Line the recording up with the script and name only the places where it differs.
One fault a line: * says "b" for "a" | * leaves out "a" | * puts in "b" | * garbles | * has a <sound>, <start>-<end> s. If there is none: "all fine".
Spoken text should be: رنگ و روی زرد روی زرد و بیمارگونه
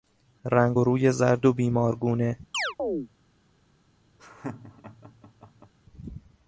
* leaves out "روی زرد"
* has a chirp, 2.5-3.1 s
* has a laugh, 4.2-5.7 s